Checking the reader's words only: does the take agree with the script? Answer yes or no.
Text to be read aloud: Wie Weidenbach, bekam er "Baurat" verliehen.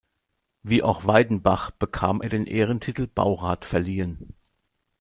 no